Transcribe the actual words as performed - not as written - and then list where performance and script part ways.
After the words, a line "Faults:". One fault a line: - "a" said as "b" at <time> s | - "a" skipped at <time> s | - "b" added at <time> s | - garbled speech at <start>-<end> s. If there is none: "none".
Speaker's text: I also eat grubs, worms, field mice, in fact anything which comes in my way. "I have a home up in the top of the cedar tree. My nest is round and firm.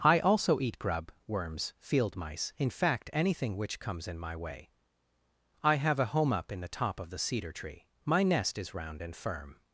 I also eat grub, worms, field mice, in fact anything which comes in my way. "I have a home up in the top of the cedar tree. My nest is round and firm.
Faults:
- "grubs" said as "grub" at 0.8 s